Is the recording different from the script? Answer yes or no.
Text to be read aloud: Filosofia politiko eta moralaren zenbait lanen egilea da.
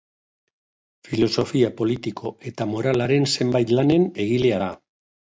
no